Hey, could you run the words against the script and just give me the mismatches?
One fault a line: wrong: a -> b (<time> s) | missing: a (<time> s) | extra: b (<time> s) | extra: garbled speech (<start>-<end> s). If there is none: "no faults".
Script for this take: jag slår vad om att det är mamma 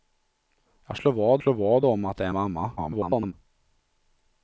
extra: slår vad (1.4 s)
extra: garbled speech (2.8-3.3 s)